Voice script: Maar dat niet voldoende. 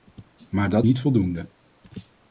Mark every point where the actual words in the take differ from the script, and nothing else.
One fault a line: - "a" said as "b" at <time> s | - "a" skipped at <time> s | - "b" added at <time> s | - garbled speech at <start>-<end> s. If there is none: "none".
none